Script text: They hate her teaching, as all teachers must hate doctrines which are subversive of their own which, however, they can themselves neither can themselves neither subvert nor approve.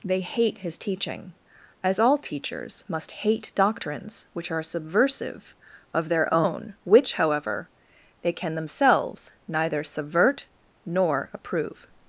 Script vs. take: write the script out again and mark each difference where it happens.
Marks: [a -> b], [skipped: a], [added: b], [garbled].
They hate [her -> his] teaching, as all teachers must hate doctrines which are subversive of their own which, however, they can themselves neither [skipped: can themselves neither] subvert nor approve.